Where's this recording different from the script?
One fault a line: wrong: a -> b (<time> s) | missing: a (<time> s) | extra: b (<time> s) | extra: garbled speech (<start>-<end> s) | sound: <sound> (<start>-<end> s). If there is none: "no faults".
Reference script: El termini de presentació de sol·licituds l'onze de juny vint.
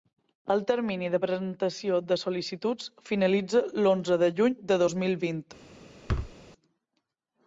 extra: finalitza (3.1 s)
extra: de dos mil (4.7 s)
sound: thud (6.1-6.3 s)